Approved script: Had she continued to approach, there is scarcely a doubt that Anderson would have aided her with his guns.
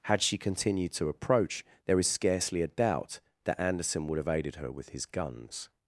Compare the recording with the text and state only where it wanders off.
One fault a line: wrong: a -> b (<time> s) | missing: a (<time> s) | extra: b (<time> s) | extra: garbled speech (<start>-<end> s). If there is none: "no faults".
no faults